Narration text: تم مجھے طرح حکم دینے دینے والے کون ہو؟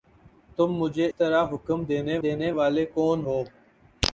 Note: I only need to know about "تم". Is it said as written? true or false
true